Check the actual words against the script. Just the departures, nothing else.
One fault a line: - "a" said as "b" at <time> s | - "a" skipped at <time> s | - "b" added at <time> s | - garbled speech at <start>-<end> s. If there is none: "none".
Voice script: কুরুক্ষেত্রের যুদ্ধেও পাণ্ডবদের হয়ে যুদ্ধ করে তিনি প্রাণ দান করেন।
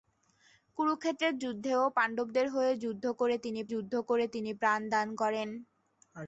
- "যুদ্ধ করে তিনি" added at 3.7 s